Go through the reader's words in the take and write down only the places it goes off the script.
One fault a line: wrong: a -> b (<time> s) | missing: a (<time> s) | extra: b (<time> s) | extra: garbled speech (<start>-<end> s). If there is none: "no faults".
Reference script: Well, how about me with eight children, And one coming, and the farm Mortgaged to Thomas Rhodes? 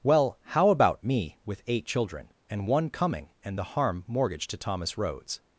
wrong: farm -> harm (3.8 s)